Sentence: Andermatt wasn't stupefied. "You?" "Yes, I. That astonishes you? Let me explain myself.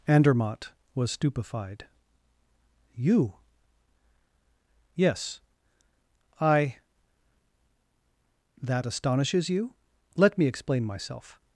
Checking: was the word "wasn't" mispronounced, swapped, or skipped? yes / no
yes